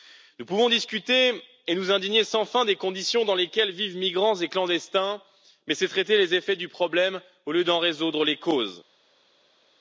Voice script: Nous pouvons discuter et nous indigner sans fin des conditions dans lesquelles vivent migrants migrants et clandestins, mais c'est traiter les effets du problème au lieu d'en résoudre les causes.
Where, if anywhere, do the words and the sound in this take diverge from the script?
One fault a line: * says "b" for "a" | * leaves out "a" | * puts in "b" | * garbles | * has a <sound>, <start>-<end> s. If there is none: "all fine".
* leaves out "migrants"